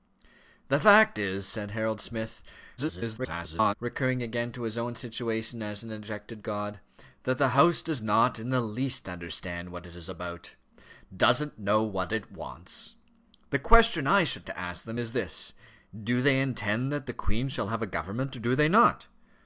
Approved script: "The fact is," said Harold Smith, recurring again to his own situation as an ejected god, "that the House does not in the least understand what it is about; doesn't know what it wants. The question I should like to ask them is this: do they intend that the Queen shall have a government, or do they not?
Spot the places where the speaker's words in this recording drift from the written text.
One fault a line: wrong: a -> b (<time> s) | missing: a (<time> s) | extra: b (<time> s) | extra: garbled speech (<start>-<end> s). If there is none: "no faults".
extra: garbled speech (2.8-3.7 s)
missing: like (14.5 s)